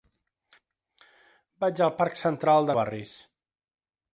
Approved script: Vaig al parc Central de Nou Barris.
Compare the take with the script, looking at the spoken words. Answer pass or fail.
fail